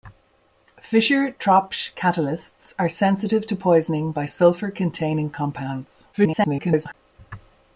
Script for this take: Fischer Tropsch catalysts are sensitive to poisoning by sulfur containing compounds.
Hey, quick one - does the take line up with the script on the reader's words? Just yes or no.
no